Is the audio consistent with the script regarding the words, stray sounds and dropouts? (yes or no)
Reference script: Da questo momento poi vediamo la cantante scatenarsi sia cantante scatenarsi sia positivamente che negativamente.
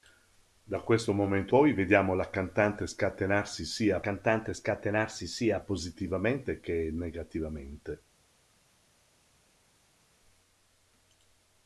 yes